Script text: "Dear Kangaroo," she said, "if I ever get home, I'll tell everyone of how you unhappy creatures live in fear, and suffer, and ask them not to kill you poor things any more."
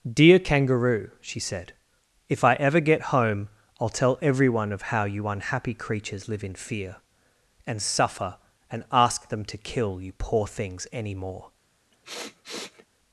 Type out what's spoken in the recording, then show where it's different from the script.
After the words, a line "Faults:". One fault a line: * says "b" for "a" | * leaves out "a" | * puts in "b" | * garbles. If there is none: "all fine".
"Dear Kangaroo," she said, "if I ever get home, I'll tell everyone of how you unhappy creatures live in fear, and suffer, and ask them to kill you poor things any more."
Faults:
* leaves out "not"